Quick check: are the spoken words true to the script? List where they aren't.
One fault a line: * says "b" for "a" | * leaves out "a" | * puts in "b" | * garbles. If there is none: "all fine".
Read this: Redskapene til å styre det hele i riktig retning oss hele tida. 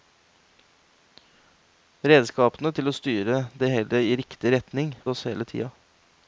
all fine